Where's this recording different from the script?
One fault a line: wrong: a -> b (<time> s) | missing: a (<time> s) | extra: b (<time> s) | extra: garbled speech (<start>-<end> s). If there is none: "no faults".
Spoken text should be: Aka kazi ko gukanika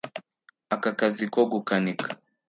no faults